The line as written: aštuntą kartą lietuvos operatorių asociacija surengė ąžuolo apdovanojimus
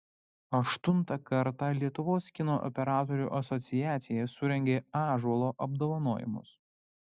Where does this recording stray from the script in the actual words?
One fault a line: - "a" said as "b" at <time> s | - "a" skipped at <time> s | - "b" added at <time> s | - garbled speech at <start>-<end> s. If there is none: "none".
- "kino" added at 2.4 s